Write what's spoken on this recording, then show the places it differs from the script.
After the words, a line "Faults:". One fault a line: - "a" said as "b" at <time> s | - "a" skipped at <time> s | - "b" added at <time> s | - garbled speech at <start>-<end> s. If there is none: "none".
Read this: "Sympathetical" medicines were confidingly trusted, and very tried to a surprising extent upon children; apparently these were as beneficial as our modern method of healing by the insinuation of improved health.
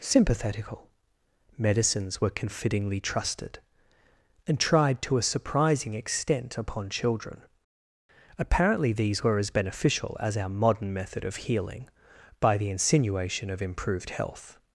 "Sympathetical" medicines were confidingly trusted, and tried to a surprising extent upon children; apparently these were as beneficial as our modern method of healing by the insinuation of improved health.
Faults:
- "very" skipped at 4.6 s